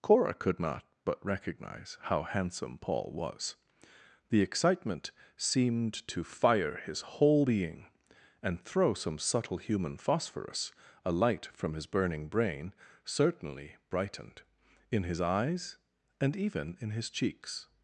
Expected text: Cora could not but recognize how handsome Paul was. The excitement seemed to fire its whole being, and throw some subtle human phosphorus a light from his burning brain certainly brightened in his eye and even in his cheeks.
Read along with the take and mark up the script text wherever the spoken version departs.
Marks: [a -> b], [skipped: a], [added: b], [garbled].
Cora could not but recognize how handsome Paul was. The excitement seemed to fire [its -> his] whole being, and throw some subtle human phosphorus a light from his burning brain certainly brightened in his [eye -> eyes] and even in his cheeks.